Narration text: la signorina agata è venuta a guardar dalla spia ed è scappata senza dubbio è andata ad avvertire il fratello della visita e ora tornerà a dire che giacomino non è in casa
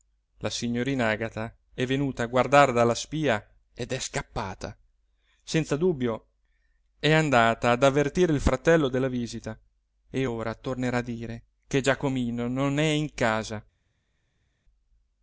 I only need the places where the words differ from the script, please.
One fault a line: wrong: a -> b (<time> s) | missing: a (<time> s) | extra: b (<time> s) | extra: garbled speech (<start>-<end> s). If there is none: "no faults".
no faults